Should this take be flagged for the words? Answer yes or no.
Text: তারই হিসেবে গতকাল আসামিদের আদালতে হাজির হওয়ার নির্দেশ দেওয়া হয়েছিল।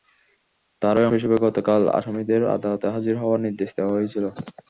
no